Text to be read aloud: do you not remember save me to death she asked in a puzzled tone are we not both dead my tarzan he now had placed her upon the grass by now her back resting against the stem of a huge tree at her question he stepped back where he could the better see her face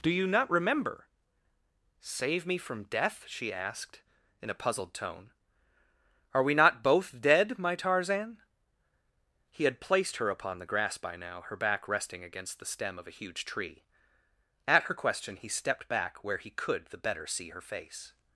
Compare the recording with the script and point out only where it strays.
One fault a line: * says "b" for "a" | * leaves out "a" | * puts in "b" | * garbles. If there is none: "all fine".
* says "from" for "to"
* leaves out "now"